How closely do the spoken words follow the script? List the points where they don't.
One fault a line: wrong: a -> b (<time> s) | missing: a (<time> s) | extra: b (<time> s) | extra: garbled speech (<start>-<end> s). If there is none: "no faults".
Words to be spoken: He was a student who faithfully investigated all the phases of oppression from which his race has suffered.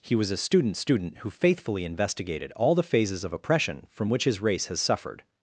extra: student (0.8 s)